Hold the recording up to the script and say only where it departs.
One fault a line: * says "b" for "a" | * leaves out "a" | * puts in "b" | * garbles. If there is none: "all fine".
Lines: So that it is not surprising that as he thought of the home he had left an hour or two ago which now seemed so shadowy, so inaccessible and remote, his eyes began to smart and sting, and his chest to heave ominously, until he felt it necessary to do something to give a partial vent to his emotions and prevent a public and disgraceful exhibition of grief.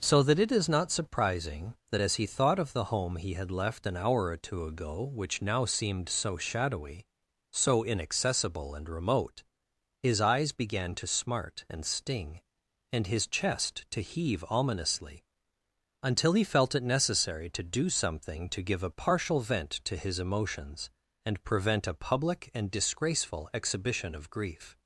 all fine